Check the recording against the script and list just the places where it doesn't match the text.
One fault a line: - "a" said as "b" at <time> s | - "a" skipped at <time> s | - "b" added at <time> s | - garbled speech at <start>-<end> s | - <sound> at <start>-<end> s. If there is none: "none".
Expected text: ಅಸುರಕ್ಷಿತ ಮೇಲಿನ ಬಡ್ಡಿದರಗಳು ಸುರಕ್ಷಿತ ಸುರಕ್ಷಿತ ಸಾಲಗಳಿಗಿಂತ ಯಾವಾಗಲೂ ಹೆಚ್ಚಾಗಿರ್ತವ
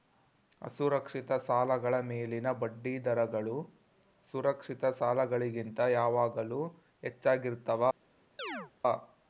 - "ಸಾಲಗಳ" added at 1.5 s
- "ಸುರಕ್ಷಿತ" skipped at 4.8 s
- chirp at 8.4-8.7 s